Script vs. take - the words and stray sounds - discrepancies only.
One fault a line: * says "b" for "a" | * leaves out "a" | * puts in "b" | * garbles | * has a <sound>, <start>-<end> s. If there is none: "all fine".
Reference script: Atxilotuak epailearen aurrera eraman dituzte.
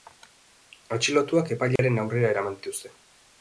* has a dropout, 1.8-1.8 s